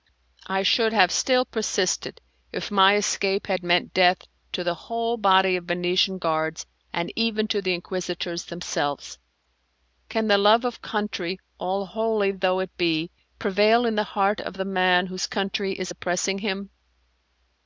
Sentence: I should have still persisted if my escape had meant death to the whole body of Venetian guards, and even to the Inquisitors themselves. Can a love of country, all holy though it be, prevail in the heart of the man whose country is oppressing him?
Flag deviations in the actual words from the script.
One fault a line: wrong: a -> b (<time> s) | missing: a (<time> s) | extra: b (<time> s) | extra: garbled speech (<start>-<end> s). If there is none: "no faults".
wrong: a -> the (10.2 s)